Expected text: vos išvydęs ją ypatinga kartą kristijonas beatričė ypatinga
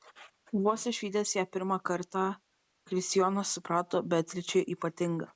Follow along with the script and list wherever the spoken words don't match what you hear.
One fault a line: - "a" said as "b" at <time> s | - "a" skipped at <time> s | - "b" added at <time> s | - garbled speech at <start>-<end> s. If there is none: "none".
- "ypatinga" said as "pirmą" at 1.6 s
- "suprato" added at 3.6 s